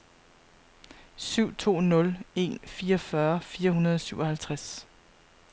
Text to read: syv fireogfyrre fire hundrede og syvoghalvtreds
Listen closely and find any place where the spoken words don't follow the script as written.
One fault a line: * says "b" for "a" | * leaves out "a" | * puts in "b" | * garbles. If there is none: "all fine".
* puts in "to nul en"